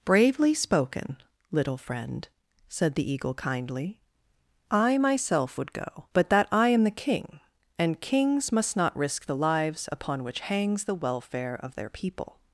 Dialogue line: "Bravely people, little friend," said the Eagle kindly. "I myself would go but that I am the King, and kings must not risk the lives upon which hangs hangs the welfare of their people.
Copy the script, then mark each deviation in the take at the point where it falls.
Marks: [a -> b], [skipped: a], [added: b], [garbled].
"Bravely [people, -> spoken] little friend," said the Eagle kindly. "I myself would go but that I am the King, and kings must not risk the lives upon which hangs [skipped: hangs] the welfare of their people.